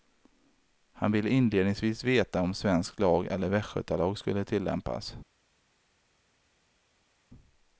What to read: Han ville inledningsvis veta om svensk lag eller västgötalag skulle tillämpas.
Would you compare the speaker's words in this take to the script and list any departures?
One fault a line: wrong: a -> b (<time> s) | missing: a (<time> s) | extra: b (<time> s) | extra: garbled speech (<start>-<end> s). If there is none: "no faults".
no faults